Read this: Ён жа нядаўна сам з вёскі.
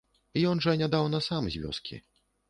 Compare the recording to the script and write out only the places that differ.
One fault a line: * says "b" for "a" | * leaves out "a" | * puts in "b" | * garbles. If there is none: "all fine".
all fine